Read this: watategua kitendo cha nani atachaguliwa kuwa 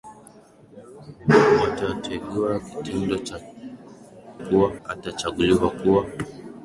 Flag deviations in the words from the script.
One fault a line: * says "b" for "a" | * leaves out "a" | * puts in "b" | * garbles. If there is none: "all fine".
* says "kuwa" for "nani"